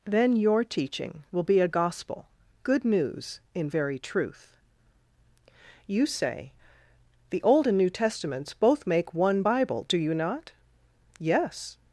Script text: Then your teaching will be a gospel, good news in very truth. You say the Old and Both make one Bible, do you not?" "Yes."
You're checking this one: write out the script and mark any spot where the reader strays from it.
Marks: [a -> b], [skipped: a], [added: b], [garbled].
Then your teaching will be a gospel, good news in very truth. You say the Old and [added: New Testaments] Both make one Bible, do you not?" "Yes."